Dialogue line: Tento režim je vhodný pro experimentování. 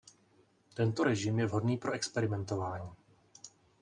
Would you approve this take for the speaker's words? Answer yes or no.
yes